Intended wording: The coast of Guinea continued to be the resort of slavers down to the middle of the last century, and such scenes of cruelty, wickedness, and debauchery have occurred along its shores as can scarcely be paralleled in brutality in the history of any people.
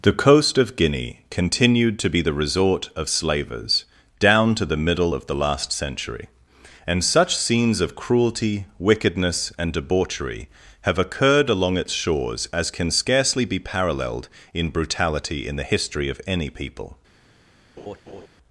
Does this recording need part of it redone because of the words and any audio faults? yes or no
yes